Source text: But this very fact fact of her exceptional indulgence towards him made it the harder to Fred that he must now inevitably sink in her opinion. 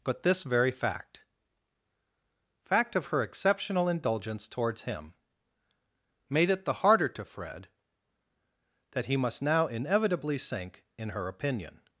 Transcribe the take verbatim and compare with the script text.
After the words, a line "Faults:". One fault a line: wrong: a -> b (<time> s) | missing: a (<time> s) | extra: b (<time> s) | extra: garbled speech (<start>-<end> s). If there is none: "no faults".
But this very fact fact of her exceptional indulgence towards him made it the harder to Fred that he must now inevitably sink in her opinion.
Faults:
no faults